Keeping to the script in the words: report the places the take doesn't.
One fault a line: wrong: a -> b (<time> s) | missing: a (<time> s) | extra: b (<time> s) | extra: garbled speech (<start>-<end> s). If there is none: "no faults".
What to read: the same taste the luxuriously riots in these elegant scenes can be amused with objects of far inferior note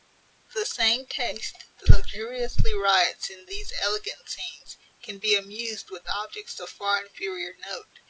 no faults